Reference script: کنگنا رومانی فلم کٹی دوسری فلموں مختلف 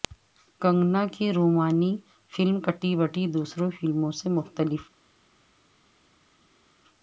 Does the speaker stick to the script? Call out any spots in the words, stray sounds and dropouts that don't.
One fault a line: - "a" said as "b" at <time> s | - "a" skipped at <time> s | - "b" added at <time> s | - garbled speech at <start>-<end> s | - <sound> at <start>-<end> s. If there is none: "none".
- "کی" added at 1.1 s
- "بٹی" added at 3.0 s
- "سے" added at 4.1 s